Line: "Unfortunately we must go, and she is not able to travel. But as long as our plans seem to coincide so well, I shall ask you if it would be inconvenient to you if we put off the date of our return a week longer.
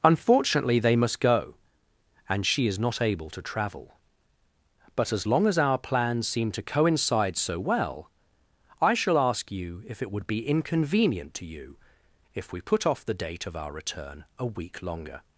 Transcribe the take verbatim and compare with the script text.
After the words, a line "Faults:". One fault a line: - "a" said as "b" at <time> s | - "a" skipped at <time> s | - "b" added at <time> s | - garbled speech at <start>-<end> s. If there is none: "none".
"Unfortunately they must go, and she is not able to travel. But as long as our plans seem to coincide so well, I shall ask you if it would be inconvenient to you if we put off the date of our return a week longer.
Faults:
- "we" said as "they" at 0.8 s